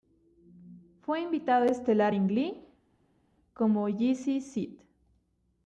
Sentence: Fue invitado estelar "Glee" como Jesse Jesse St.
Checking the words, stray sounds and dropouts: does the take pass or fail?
fail